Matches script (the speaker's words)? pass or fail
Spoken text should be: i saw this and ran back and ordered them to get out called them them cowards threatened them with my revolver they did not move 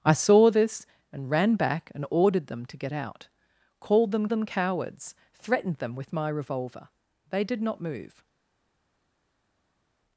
pass